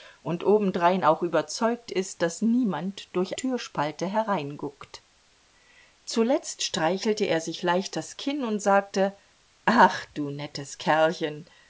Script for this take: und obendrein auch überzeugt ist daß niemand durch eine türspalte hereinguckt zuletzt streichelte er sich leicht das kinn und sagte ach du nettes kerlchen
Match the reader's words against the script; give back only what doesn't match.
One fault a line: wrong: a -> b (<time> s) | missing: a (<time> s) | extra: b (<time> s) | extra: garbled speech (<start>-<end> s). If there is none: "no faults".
missing: eine (3.4 s)